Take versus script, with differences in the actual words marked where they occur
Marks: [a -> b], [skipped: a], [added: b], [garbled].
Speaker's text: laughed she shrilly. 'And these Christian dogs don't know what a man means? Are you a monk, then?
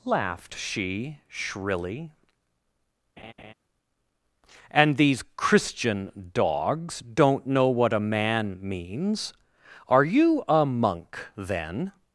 laughed she shrilly. 'And these Christian dogs don't know what a man means? Are you a monk, then?